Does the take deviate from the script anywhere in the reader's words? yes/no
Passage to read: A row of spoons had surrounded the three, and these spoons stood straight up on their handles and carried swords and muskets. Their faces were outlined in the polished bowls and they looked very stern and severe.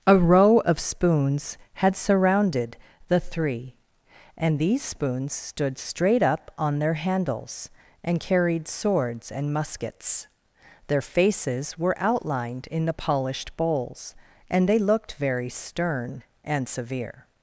no